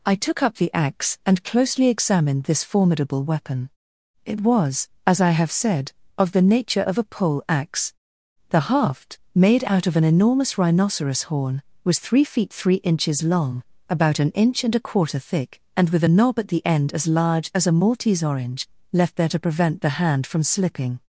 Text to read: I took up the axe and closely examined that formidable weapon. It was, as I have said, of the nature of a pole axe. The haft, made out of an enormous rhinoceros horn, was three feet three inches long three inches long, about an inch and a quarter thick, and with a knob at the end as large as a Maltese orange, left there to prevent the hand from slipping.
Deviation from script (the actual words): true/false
true